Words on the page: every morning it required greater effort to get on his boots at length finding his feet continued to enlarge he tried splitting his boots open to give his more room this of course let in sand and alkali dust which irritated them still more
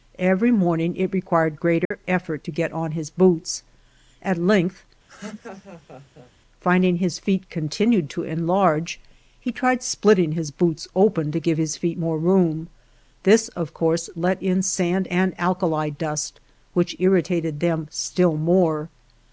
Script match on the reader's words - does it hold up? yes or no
no